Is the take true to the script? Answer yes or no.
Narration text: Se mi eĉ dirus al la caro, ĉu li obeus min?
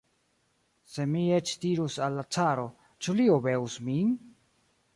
yes